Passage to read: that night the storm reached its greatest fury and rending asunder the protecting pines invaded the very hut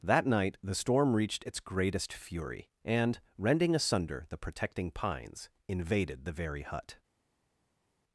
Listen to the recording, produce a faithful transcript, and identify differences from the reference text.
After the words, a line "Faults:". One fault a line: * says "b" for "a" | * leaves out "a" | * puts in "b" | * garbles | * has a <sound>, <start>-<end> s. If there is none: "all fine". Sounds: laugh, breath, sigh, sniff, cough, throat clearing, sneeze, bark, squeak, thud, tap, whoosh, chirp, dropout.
that night the storm reached its greatest fury and rending asunder the protecting pines invaded the very hut
Faults:
all fine